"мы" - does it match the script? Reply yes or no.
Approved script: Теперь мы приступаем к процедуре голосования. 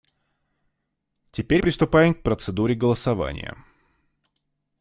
no